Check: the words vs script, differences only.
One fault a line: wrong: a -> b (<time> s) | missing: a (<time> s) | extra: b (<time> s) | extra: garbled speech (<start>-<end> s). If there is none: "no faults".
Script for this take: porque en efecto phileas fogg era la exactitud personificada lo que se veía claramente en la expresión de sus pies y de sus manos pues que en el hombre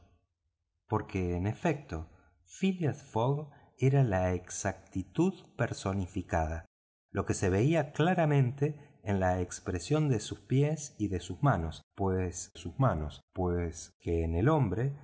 extra: sus manos pues (12.5 s)